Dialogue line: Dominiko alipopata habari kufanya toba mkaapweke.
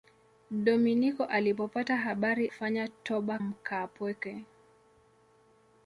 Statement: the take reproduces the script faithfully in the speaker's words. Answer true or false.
true